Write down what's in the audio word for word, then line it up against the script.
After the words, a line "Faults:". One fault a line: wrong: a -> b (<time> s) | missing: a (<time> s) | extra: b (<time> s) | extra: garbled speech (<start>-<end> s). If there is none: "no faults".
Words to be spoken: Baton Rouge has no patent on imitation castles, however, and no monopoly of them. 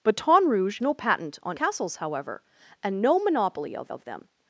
Baton Rouge no patent on castles, however, and no monopoly of of them.
Faults:
missing: has (0.8 s)
missing: imitation (1.6 s)
extra: of (3.9 s)